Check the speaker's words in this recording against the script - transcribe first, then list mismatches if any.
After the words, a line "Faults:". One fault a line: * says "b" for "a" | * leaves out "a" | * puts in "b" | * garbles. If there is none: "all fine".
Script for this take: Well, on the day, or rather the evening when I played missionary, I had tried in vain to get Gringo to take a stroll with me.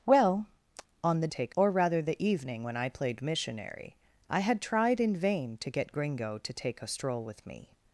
Well, on the take, or rather the evening when I played missionary, I had tried in vain to get Gringo to take a stroll with me.
Faults:
* says "take" for "day"